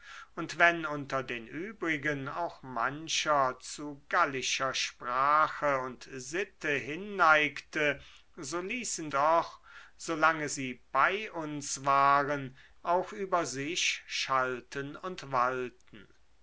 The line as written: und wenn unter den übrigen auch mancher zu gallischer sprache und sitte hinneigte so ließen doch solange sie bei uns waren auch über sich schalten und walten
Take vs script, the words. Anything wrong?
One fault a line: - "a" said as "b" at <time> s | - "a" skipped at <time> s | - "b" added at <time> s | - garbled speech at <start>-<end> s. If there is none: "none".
none